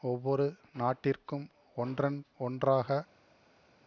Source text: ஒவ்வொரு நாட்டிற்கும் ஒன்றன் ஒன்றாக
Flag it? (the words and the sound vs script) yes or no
no